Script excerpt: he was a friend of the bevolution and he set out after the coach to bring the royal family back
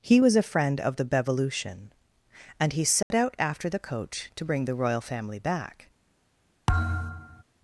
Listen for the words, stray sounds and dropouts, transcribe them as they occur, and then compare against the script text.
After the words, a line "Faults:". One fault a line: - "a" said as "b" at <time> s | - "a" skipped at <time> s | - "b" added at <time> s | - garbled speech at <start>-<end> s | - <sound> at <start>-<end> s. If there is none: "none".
he was a friend of the bevolution and he set out after the coach to bring the royal family back
Faults:
- dropout at 3.0-3.1 s
- thud at 6.7-7.4 s